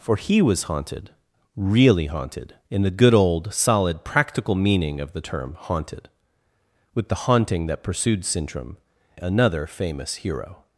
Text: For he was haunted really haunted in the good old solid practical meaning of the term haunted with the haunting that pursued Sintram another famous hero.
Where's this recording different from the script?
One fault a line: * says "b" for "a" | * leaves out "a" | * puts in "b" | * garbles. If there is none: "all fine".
all fine